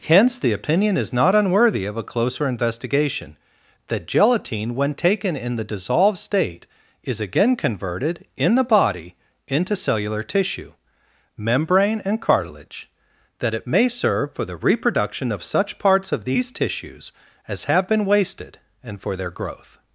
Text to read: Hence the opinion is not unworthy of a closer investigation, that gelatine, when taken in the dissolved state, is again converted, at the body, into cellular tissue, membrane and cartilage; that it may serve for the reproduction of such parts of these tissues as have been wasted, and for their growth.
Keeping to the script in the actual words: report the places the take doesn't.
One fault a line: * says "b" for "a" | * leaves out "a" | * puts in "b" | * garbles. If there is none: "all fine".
* says "in" for "at"